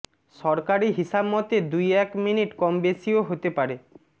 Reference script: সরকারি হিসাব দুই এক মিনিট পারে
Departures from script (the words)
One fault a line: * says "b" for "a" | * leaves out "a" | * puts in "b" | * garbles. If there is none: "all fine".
* puts in "মতে"
* puts in "কম বেশিও হতে"